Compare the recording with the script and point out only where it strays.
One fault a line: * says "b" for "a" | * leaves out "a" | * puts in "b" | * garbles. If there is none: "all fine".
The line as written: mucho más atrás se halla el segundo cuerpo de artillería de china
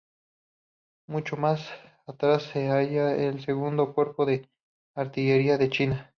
all fine